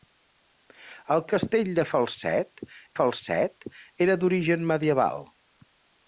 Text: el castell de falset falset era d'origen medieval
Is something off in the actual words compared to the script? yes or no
no